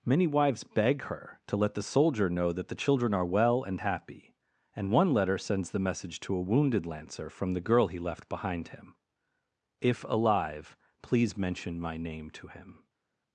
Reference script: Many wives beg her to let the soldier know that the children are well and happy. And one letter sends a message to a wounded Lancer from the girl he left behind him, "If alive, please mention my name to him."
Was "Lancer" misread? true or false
false